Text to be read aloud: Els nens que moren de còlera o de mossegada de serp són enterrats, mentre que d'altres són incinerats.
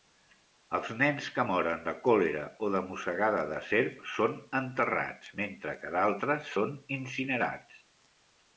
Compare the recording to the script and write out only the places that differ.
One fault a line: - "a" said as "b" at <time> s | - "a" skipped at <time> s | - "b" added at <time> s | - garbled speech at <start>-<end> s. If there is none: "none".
none